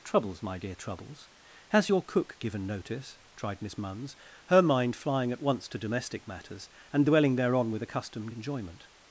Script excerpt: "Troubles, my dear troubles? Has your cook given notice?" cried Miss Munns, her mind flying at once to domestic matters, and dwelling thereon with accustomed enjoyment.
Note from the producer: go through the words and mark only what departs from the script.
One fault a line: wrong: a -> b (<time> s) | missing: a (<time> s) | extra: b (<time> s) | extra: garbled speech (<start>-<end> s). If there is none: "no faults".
wrong: cried -> tried (3.3 s)